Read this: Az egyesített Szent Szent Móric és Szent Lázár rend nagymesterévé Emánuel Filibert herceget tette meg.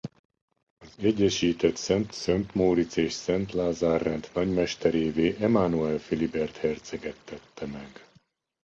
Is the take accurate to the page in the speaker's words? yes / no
yes